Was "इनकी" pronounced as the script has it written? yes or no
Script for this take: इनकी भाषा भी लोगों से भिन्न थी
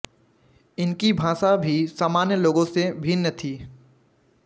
yes